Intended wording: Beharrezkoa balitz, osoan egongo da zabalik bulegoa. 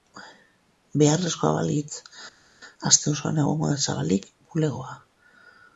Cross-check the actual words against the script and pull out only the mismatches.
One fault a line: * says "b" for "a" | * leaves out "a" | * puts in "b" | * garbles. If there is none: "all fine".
* puts in "aste"